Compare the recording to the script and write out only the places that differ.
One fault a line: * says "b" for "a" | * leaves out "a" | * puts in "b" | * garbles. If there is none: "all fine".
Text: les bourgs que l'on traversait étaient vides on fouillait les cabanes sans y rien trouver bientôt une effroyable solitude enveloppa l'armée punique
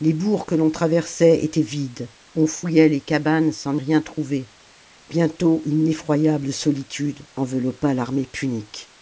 * leaves out "y"